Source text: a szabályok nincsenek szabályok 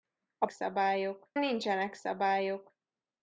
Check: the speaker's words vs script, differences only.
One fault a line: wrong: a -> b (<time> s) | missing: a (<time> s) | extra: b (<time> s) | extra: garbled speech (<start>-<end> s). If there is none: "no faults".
no faults